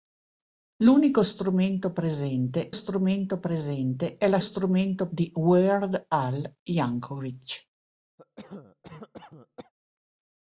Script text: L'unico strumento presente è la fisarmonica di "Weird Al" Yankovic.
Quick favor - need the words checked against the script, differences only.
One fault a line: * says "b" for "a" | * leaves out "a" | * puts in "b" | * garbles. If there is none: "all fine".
* puts in "strumento presente"
* says "strumento" for "fisarmonica"